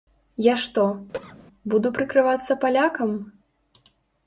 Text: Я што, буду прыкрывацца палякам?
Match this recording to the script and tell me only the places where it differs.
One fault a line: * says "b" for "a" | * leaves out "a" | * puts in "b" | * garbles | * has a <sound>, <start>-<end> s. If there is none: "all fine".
* has a cough, 1.1-1.4 s